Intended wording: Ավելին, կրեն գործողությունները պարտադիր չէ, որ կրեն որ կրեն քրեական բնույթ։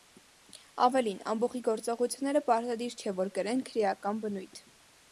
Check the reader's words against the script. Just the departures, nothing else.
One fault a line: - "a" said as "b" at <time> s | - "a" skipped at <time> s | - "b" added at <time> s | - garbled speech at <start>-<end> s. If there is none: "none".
- "կրեն" said as "ամբոխի" at 1.3 s
- "որ կրեն" skipped at 3.6 s